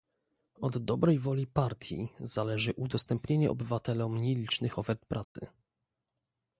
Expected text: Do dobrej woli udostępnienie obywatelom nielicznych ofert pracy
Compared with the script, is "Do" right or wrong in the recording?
wrong